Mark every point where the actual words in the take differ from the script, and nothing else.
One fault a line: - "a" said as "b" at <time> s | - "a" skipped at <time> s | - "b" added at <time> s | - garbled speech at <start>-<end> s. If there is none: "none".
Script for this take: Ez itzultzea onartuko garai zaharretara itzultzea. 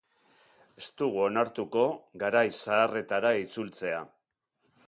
- "itzultzea" said as "dugu" at 1.0 s